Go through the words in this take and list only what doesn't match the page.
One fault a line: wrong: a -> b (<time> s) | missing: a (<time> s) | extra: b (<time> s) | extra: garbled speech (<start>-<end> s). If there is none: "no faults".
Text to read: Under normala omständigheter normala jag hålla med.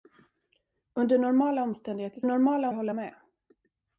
no faults